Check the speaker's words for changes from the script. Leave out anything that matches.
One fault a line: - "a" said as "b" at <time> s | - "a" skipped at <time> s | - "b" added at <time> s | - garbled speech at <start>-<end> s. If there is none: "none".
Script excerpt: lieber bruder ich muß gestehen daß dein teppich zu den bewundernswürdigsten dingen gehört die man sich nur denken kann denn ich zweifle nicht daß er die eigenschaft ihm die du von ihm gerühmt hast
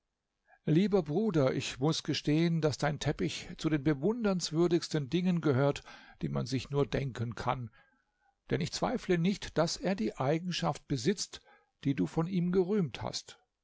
- "ihm" said as "besitzt" at 10.9 s